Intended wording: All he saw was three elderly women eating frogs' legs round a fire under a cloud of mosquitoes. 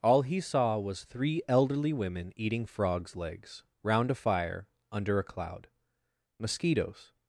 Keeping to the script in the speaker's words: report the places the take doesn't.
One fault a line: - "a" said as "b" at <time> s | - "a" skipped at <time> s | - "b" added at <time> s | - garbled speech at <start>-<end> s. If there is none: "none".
- "of" skipped at 5.7 s